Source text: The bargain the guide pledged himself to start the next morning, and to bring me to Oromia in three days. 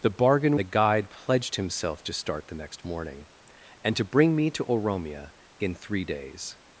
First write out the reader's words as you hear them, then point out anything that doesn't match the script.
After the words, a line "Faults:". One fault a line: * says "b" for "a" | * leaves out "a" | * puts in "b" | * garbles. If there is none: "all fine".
The bargain the guide pledged himself to start the next morning, and to bring me to Oromia in three days.
Faults:
all fine